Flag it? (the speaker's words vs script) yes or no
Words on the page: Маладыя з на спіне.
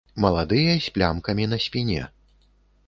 yes